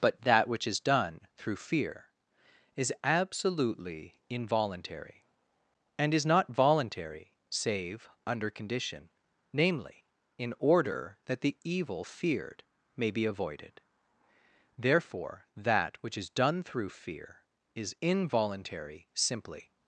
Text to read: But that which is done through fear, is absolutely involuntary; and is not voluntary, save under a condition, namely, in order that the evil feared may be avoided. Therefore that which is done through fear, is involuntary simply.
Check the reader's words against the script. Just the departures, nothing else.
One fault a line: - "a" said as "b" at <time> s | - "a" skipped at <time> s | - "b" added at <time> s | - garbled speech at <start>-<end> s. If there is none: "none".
- "a" skipped at 8.5 s